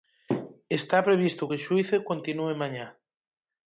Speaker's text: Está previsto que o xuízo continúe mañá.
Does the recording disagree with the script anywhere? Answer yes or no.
no